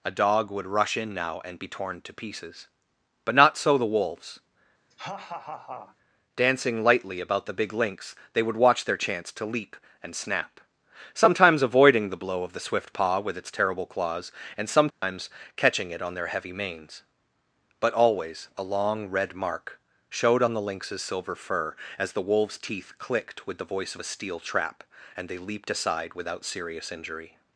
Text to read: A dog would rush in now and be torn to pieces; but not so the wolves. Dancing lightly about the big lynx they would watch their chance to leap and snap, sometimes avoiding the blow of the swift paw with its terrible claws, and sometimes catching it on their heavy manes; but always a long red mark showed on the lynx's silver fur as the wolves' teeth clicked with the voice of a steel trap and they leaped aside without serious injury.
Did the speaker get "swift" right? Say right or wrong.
right